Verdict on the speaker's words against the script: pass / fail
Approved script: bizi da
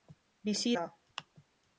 pass